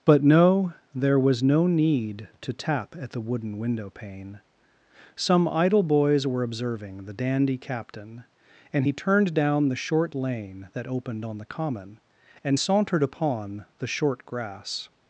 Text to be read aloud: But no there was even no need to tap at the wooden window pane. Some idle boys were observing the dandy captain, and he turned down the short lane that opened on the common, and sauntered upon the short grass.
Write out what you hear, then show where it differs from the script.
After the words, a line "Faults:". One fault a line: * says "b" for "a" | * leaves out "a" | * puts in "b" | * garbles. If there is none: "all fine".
But no there was no need to tap at the wooden window pane. Some idle boys were observing the dandy captain, and he turned down the short lane that opened on the common, and sauntered upon the short grass.
Faults:
* leaves out "even"